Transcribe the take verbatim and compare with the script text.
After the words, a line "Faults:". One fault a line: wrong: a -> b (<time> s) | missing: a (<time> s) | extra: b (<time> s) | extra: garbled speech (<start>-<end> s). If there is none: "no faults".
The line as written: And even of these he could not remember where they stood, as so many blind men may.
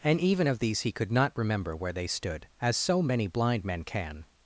And even of these he could not remember where they stood, as so many blind men can.
Faults:
wrong: may -> can (3.8 s)